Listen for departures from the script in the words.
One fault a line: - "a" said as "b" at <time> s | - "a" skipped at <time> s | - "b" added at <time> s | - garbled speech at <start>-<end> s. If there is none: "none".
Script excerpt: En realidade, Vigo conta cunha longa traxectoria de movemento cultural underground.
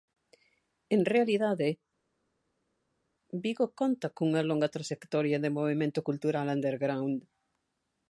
none